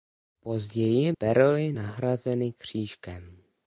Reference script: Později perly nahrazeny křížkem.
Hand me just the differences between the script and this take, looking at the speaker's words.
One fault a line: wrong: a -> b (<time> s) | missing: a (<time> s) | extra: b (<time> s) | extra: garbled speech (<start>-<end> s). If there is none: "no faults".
no faults